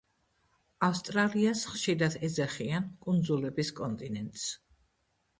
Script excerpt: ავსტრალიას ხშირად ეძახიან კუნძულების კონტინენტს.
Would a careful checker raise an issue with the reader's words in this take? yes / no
no